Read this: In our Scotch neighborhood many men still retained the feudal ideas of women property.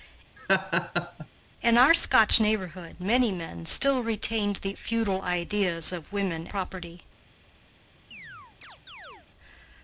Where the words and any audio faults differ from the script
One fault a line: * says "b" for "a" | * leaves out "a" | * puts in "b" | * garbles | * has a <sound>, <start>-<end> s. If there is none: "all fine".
* has a laugh, 0.4-1.3 s
* has a chirp, 8.1-9.3 s